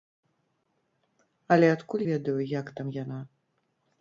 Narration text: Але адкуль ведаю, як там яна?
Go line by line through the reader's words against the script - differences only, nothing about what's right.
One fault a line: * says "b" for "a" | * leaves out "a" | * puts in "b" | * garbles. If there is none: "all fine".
all fine